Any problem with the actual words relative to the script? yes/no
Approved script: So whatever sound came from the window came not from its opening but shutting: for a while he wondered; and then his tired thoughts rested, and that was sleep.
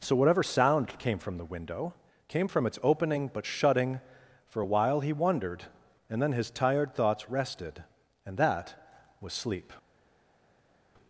yes